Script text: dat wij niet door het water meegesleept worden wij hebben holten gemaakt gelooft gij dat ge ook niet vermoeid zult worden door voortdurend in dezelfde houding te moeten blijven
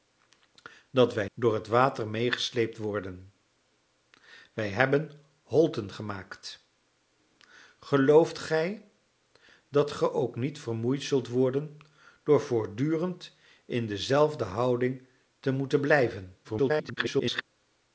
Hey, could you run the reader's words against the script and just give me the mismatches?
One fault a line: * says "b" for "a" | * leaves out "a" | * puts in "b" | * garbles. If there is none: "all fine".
* leaves out "niet"
* garbles